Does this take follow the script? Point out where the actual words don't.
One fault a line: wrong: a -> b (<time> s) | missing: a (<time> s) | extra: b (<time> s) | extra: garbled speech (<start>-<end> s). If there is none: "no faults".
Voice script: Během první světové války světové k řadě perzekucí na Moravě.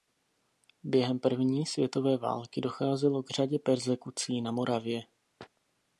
wrong: světové -> docházelo (2.6 s)